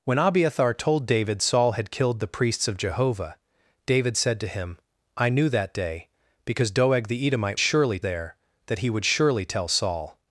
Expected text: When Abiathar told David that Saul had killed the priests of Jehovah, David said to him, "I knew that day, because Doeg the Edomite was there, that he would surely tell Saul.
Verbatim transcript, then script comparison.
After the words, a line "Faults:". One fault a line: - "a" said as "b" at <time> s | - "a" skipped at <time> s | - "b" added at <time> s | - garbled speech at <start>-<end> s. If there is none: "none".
When Abiathar told David Saul had killed the priests of Jehovah, David said to him, "I knew that day, because Doeg the Edomite surely there, that he would surely tell Saul.
Faults:
- "that" skipped at 1.4 s
- "was" said as "surely" at 7.6 s